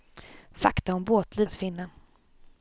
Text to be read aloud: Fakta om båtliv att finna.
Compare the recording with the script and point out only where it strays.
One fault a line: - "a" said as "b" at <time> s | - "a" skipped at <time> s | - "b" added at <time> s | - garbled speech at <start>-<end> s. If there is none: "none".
none